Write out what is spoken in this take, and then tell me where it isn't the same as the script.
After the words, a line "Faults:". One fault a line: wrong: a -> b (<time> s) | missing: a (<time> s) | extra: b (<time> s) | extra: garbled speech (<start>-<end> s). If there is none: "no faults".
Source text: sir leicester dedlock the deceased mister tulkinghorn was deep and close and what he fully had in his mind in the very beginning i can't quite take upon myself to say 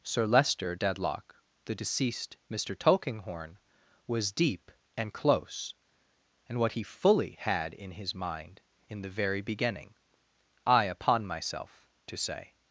sir leicester dedlock the deceased mister tulkinghorn was deep and close and what he fully had in his mind in the very beginning i upon myself to say
Faults:
missing: can't quite take (10.8 s)